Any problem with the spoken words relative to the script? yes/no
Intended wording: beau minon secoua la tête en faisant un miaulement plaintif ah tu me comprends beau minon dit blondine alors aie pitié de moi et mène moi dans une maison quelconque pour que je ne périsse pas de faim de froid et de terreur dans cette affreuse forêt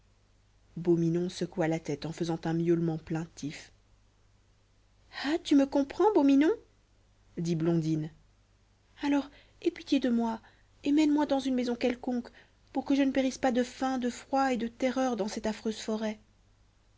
no